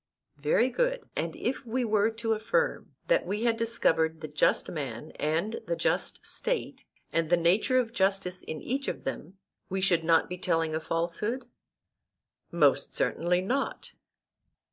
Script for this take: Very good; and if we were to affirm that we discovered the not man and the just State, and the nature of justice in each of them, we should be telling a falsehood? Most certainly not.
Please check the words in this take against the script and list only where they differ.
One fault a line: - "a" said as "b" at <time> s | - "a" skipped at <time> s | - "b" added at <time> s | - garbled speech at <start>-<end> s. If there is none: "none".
- "had" added at 3.4 s
- "not" said as "just" at 4.3 s
- "not" added at 10.0 s